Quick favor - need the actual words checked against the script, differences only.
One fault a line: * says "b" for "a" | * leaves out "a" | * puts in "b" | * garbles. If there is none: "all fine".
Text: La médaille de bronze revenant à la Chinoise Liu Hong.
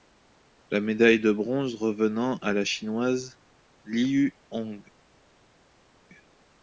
all fine